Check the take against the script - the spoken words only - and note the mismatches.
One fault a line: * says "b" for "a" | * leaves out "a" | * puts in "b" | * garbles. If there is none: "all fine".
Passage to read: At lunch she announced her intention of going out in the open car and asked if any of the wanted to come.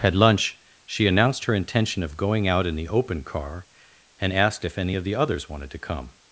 * puts in "others"